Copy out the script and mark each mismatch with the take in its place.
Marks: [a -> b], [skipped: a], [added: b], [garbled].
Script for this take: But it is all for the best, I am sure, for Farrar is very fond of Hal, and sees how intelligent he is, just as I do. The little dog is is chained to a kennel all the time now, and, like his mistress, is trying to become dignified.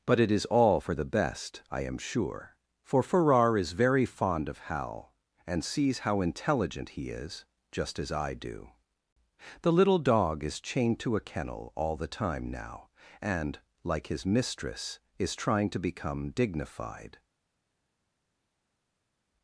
But it is all for the best, I am sure, for Farrar is very fond of Hal, and sees how intelligent he is, just as I do. The little dog is [skipped: is] chained to a kennel all the time now, and, like his mistress, is trying to become dignified.